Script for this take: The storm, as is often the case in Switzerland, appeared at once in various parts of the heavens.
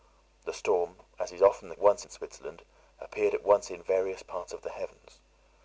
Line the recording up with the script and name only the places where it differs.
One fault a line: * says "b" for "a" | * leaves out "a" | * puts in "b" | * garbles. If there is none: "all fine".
* says "once" for "case"